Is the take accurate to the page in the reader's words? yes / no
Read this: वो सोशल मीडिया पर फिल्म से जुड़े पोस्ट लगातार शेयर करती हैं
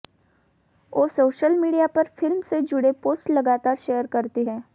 yes